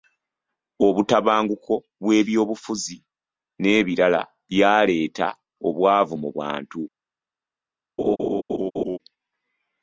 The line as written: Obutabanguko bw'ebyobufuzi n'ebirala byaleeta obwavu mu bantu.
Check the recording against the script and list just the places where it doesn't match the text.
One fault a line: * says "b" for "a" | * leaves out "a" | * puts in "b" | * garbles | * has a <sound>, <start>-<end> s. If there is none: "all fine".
* has a laugh, 8.0-9.0 s